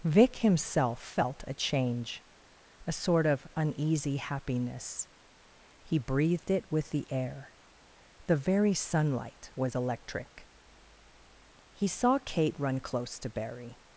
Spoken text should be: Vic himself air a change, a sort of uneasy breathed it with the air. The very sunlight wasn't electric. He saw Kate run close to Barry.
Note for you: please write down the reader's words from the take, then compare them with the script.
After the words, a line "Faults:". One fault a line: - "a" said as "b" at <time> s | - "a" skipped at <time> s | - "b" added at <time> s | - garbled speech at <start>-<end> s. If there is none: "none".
Vic himself felt a change, a sort of uneasy happiness; he breathed it with the air. The very sunlight was electric. He saw Kate run close to Barry.
Faults:
- "air" said as "felt" at 1.0 s
- "happiness he" added at 4.2 s
- "wasn't" said as "was" at 9.6 s